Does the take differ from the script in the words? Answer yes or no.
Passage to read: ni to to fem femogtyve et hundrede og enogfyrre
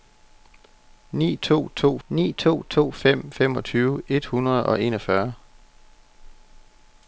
yes